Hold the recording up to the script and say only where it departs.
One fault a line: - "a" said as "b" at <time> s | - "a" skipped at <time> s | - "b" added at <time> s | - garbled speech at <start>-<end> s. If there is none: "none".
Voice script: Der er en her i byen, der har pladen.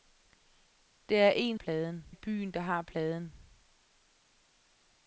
- "her" said as "pladen" at 1.5 s